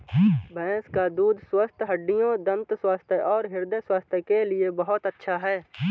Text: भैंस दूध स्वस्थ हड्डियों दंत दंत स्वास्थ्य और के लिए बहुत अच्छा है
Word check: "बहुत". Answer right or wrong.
right